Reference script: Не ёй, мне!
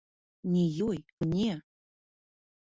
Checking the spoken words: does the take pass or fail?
pass